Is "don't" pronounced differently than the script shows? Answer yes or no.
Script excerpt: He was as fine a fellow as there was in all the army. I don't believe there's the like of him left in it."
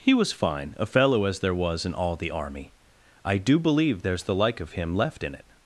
yes